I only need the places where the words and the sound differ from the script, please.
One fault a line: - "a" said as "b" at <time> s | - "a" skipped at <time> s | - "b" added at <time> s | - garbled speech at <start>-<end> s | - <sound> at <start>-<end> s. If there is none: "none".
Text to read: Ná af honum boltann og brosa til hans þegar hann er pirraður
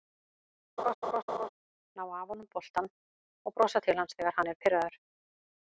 - laugh at 0.8-1.5 s